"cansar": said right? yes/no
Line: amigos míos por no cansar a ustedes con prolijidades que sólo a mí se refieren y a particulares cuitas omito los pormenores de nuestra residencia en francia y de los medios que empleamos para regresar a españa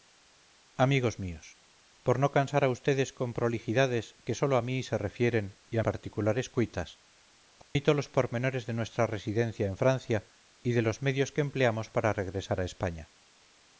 yes